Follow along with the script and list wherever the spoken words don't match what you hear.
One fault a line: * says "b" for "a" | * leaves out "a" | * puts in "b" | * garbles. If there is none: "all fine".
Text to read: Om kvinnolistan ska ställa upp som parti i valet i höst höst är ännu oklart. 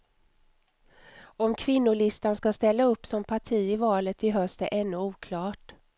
* leaves out "höst"